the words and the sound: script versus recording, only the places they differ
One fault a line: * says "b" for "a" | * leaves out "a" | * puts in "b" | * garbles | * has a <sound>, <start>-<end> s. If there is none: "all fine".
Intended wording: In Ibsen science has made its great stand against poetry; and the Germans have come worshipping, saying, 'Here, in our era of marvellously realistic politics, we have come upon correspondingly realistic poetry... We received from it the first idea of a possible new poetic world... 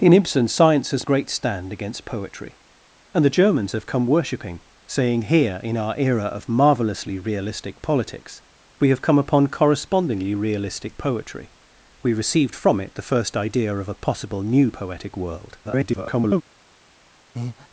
* leaves out "made its"
* garbles
* has a breath, 17.3-17.7 s